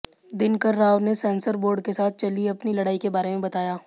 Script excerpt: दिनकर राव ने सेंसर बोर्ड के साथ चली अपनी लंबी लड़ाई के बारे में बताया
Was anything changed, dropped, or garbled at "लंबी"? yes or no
yes